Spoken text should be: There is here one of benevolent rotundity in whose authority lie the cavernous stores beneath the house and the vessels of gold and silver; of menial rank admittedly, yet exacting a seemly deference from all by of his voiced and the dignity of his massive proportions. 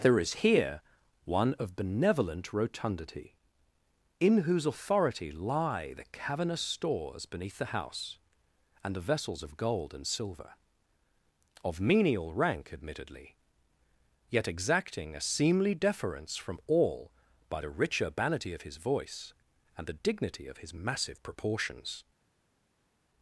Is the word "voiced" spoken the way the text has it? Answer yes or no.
no